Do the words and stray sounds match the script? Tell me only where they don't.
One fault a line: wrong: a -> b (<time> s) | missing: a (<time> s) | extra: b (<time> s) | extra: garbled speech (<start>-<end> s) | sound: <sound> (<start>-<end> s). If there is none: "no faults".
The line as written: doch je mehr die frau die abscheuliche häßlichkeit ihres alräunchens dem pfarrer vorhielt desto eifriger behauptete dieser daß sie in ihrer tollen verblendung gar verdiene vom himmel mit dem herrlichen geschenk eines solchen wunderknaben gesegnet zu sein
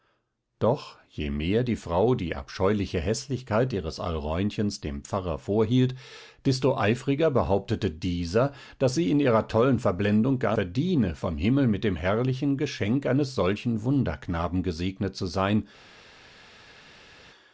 no faults